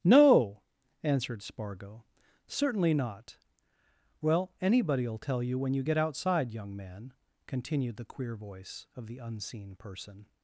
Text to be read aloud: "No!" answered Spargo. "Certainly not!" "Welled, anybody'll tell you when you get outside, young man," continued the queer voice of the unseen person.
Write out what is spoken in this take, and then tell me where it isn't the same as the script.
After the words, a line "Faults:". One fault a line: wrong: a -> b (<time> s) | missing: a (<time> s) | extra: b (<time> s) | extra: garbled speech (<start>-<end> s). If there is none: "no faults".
"No!" answered Spargo. "Certainly not!" "Well, anybody'll tell you when you get outside, young man," continued the queer voice of the unseen person.
Faults:
wrong: Welled -> Well (4.2 s)